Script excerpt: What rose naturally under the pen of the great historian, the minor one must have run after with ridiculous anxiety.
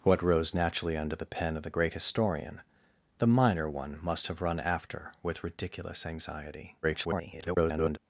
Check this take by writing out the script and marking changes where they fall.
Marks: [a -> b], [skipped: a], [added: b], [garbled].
What rose naturally under the pen of the great historian, the minor one must have run after with ridiculous anxiety. [garbled]